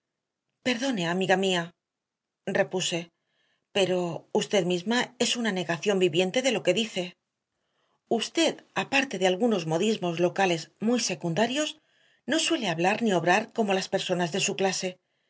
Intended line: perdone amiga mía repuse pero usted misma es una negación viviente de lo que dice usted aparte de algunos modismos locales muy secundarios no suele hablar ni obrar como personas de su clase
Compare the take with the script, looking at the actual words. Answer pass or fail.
fail